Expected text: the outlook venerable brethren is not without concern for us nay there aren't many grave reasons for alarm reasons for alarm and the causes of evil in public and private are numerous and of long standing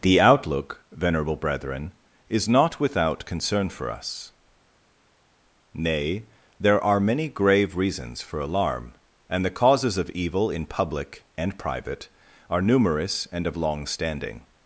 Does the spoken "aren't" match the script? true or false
false